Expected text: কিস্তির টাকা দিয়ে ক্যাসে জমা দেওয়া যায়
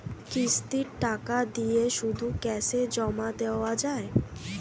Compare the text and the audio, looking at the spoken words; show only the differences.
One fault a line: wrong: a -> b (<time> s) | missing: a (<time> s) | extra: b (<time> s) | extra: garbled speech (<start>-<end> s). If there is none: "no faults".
extra: শুধু (2.0 s)